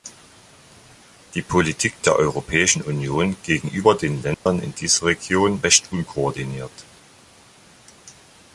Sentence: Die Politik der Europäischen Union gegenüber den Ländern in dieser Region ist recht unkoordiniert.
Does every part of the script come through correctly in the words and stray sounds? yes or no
no